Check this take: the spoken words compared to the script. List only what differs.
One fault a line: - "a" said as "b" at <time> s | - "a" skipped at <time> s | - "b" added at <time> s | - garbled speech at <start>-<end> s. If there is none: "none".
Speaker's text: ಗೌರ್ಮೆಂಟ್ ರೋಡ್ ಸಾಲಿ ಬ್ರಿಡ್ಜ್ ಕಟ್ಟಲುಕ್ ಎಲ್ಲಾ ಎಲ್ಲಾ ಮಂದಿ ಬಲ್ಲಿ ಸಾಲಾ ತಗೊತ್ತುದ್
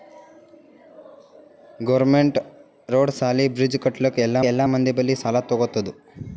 none